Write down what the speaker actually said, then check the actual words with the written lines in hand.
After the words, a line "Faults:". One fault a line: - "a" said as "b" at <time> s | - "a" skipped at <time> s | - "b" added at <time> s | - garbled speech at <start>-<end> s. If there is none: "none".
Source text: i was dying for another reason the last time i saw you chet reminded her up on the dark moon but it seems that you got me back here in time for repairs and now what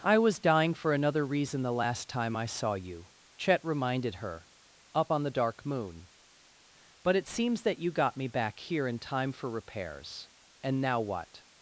i was dying for another reason the last time i saw you chet reminded her up on the dark moon but it seems that you got me back here in time for repairs and now what
Faults:
none